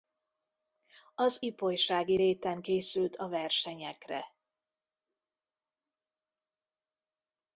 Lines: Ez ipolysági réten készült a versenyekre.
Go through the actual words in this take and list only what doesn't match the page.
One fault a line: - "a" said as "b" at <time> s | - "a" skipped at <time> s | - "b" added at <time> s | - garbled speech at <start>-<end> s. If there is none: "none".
- "Ez" said as "Az" at 1.1 s